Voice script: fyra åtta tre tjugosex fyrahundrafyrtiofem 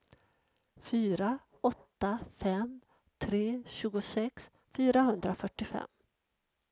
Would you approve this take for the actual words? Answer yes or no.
no